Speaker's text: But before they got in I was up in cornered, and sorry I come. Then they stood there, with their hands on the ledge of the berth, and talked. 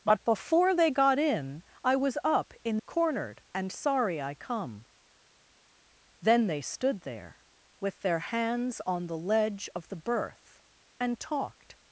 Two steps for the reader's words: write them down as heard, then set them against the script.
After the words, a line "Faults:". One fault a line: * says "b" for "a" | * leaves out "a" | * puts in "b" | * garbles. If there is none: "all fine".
But before they got in I was up in cornered, and sorry I come. Then they stood there, with their hands on the ledge of the berth, and talked.
Faults:
all fine